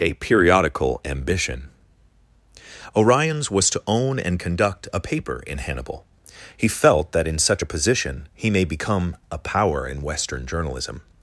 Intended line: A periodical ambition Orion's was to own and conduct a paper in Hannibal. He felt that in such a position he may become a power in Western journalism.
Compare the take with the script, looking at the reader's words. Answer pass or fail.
pass